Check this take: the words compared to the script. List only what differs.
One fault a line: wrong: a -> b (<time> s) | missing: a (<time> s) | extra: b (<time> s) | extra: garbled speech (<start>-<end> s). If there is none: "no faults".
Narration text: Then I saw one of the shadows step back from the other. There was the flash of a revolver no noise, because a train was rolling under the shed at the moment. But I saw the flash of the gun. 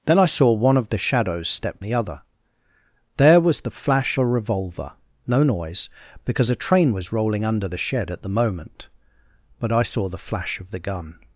missing: back from (1.8 s)
missing: of (4.2 s)